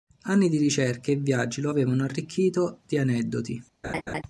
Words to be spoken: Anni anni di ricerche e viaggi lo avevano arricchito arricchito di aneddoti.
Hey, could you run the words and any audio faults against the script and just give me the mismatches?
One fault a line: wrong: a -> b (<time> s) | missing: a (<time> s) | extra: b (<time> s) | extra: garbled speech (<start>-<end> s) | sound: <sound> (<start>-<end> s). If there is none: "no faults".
missing: anni (0.5 s)
missing: arricchito (2.8 s)
sound: laugh (3.8-4.2 s)